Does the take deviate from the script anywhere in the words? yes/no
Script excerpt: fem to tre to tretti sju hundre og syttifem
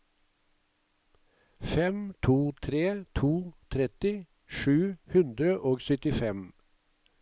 no